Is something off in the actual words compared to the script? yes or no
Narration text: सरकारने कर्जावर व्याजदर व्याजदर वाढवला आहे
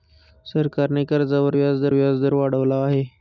no